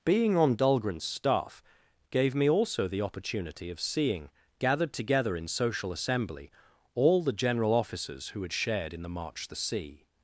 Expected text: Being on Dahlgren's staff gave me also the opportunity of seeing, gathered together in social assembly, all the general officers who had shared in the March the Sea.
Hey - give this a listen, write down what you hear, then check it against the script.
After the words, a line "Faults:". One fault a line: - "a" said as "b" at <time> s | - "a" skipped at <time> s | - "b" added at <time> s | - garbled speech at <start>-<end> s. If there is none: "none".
Being on Dahlgren's staff gave me also the opportunity of seeing, gathered together in social assembly, all the general officers who had shared in the March the Sea.
Faults:
none